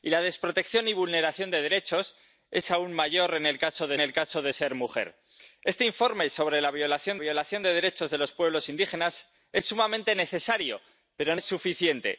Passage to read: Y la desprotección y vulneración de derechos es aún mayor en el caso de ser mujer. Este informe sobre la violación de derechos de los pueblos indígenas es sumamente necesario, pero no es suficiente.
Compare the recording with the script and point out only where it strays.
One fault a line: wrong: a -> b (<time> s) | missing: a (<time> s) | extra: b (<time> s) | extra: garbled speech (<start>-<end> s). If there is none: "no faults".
extra: el caso de (4.0 s)
extra: violación (7.2 s)
missing: no (11.4 s)